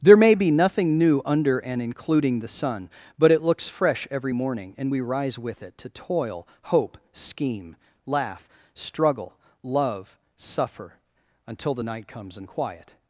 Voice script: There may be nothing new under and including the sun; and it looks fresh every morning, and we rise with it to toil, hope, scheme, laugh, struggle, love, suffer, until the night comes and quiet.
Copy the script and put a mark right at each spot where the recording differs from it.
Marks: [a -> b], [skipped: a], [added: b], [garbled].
There may be nothing new under and including the sun; [and -> but] it looks fresh every morning, and we rise with it to toil, hope, scheme, laugh, struggle, love, suffer, until the night comes and quiet.